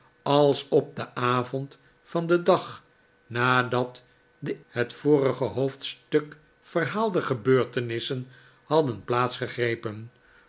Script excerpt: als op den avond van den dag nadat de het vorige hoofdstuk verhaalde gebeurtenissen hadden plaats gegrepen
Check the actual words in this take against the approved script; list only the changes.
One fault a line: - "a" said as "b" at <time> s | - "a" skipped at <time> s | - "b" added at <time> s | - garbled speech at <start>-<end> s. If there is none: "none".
none